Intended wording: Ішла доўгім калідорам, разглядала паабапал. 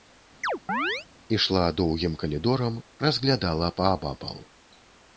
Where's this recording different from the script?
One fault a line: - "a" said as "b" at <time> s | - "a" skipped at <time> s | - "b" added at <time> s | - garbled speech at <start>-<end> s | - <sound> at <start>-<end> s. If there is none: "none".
- chirp at 0.4-1.1 s